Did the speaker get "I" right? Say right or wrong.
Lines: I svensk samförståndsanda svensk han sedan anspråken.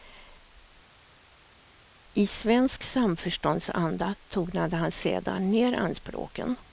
right